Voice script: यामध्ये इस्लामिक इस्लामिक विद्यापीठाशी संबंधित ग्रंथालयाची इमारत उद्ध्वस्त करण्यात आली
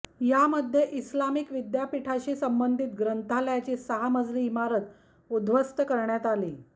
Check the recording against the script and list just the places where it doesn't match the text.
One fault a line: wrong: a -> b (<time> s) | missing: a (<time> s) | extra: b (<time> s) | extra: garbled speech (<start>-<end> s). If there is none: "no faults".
missing: इस्लामिक (1.5 s)
extra: सहा मजली (3.8 s)